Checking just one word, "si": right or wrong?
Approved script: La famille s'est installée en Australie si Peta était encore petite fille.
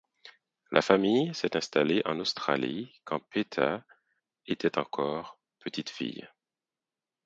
wrong